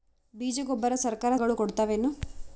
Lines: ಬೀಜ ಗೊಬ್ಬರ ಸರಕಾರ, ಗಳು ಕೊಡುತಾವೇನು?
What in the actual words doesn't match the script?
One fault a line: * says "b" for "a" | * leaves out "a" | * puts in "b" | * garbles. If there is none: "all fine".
all fine